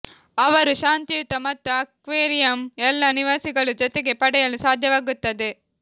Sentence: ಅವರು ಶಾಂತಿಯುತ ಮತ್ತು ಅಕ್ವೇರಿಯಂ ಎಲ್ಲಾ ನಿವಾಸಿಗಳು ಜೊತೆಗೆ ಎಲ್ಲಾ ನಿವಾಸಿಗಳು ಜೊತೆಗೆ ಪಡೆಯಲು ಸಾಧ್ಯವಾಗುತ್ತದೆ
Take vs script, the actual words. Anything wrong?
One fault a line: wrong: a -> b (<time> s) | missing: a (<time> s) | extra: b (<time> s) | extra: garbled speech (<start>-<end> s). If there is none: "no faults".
missing: ಎಲ್ಲಾ ನಿವಾಸಿಗಳು ಜೊತೆಗೆ (4.1 s)